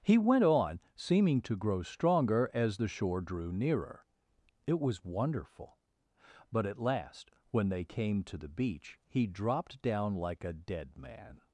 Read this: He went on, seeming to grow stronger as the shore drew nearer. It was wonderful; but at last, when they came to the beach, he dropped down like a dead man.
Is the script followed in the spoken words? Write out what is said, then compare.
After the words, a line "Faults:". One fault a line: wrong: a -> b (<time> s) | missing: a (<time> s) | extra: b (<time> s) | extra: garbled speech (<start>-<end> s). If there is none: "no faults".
He went on, seeming to grow stronger as the shore drew nearer. It was wonderful; but at last, when they came to the beach, he dropped down like a dead man.
Faults:
no faults